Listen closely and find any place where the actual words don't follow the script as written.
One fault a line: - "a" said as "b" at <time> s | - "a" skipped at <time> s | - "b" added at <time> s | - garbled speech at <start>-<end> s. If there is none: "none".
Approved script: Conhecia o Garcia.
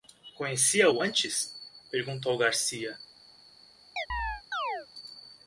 - "antes perguntou" added at 1.0 s